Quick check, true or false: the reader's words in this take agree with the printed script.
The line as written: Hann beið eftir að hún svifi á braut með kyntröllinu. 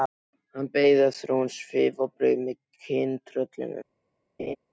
true